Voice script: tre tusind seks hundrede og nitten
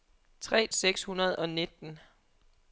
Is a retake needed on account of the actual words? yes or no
yes